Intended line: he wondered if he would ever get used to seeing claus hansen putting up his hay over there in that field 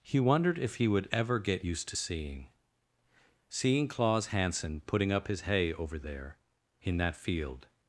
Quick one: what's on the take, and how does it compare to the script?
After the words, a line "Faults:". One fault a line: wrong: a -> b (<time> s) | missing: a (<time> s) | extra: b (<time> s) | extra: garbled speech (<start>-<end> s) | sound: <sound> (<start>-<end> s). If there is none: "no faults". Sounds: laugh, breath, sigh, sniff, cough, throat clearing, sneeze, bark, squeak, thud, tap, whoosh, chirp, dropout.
he wondered if he would ever get used to seeing seeing claus hansen putting up his hay over there in that field
Faults:
extra: seeing (3.5 s)